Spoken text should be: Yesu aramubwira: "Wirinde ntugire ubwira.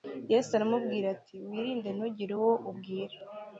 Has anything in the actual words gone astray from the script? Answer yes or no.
yes